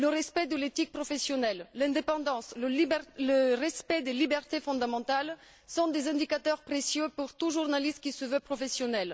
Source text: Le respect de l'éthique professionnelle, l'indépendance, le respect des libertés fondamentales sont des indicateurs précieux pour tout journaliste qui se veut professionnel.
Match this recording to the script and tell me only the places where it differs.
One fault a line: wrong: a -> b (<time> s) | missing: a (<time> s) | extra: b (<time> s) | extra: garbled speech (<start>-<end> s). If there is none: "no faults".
no faults